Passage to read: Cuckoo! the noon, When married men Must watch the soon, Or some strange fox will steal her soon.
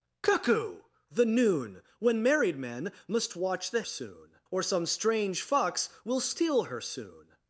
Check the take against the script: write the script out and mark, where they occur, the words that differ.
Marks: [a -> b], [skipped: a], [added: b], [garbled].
Cuckoo! the noon, When married men Must watch the soon, Or some strange fox will steal her soon.